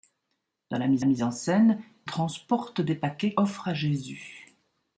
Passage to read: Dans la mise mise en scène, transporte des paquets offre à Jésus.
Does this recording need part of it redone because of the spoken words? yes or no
no